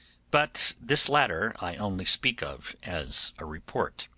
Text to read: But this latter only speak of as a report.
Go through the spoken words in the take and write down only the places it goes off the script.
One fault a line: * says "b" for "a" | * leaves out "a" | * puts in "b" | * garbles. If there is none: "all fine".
* puts in "I"